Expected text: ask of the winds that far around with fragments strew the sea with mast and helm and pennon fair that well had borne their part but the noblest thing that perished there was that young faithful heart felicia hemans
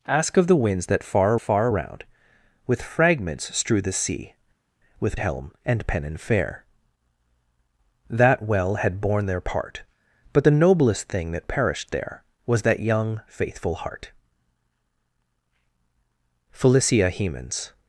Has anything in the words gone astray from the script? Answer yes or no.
yes